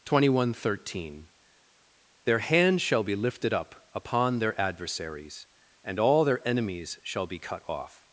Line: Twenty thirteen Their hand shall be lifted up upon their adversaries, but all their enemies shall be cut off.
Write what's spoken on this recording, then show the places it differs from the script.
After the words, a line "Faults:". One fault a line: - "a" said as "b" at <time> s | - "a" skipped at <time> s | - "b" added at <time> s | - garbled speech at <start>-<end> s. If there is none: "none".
Twenty one thirteen Their hand shall be lifted up upon their adversaries, and all their enemies shall be cut off.
Faults:
- "one" added at 0.4 s
- "but" said as "and" at 5.8 s